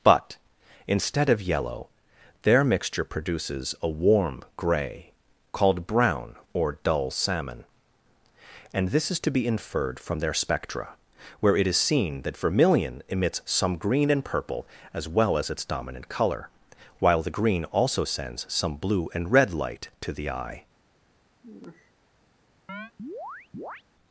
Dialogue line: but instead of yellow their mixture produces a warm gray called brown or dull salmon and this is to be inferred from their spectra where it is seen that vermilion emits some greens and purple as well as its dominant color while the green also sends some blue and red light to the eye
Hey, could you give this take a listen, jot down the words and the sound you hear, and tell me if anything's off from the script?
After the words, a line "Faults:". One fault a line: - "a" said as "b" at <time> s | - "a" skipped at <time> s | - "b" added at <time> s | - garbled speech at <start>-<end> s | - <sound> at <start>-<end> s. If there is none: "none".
but instead of yellow their mixture produces a warm gray called brown or dull salmon and this is to be inferred from their spectra where it is seen that vermilion emits some green and purple as well as its dominant color while the green also sends some blue and red light to the eye
Faults:
- "greens" said as "green" at 13.8 s
- sigh at 21.4-21.9 s
- chirp at 22.7-23.8 s